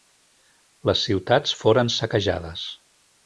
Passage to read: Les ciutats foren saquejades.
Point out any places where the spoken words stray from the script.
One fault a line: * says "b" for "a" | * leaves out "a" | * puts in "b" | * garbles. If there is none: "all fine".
all fine